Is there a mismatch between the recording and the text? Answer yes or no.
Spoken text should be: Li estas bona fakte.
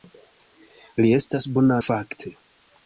no